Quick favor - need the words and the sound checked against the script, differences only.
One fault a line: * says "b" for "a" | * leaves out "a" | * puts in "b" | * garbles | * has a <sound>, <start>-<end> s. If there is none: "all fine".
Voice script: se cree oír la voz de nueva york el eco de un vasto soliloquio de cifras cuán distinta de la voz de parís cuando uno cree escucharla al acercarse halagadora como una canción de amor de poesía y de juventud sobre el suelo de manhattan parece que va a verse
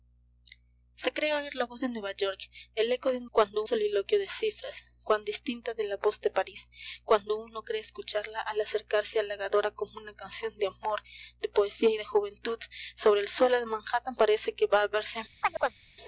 * says "cuando" for "vasto"
* has a chirp, 15.4-15.8 s